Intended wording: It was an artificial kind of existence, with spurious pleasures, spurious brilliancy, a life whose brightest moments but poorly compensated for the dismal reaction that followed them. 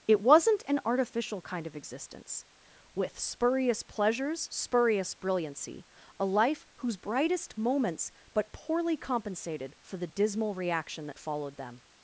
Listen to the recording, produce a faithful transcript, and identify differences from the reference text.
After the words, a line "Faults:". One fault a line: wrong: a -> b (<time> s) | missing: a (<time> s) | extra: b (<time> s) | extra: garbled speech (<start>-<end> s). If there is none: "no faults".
It wasn't an artificial kind of existence, with spurious pleasures, spurious brilliancy, a life whose brightest moments but poorly compensated for the dismal reaction that followed them.
Faults:
wrong: was -> wasn't (0.2 s)